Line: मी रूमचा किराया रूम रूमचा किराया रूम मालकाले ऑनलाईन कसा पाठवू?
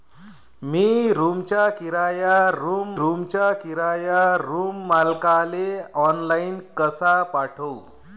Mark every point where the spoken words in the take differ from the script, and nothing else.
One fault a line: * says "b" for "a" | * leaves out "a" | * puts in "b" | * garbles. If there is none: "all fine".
all fine